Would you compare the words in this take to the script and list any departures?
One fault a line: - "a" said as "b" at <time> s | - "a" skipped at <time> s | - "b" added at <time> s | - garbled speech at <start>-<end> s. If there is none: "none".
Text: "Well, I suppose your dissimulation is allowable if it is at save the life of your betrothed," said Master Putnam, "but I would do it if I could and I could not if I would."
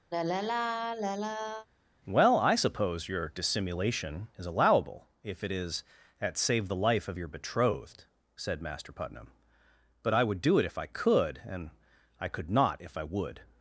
none